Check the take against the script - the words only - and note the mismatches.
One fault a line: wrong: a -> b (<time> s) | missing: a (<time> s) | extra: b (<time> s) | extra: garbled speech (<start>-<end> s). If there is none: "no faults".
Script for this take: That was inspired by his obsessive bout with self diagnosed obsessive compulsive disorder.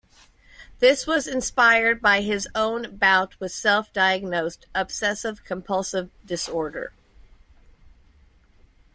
wrong: That -> This (0.8 s)
wrong: obsessive -> own (2.5 s)